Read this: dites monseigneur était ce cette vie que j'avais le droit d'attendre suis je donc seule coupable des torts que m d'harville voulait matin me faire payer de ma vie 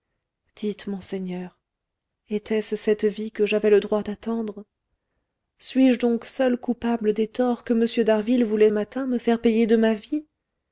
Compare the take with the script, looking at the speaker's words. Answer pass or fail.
pass